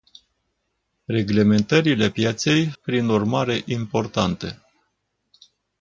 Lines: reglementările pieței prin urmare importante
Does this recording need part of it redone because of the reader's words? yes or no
no